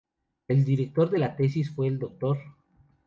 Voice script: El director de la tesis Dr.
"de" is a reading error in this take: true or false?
false